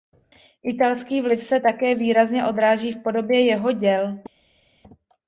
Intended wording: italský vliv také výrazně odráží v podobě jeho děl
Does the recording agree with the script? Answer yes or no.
no